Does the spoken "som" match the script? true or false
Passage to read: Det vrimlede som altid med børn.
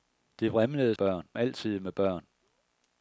false